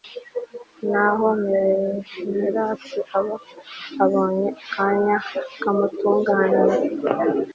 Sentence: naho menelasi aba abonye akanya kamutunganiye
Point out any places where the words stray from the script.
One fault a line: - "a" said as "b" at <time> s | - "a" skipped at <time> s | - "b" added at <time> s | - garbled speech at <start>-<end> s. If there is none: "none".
none